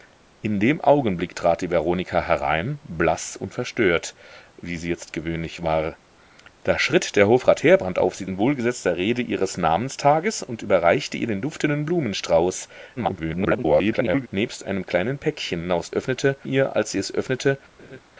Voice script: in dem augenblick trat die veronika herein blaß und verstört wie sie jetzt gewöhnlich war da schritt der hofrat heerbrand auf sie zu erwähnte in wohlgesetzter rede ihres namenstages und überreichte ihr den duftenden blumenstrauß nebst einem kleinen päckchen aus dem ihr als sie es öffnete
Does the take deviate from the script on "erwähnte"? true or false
true